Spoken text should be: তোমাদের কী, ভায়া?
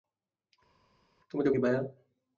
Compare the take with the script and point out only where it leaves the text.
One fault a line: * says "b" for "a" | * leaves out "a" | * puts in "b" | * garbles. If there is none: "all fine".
all fine